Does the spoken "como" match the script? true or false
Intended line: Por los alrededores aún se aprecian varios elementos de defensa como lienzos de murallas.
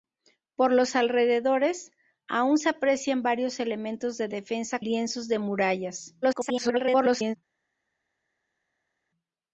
false